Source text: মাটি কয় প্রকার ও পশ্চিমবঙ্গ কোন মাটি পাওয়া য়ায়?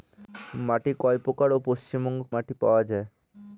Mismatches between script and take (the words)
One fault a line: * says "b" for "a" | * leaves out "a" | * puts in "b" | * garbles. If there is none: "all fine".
* leaves out "কোন"